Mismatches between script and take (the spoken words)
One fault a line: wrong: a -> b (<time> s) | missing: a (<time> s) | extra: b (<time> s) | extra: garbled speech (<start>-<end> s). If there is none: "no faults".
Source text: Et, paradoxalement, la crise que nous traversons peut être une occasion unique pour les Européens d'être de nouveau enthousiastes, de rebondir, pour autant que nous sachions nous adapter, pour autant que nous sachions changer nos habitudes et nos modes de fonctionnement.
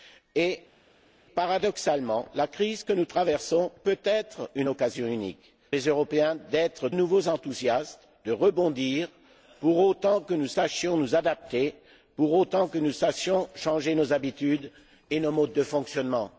missing: pour (5.5 s)
missing: de (6.9 s)